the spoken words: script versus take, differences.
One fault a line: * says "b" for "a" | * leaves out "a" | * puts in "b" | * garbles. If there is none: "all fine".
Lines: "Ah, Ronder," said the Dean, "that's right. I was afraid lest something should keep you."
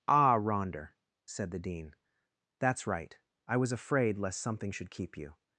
all fine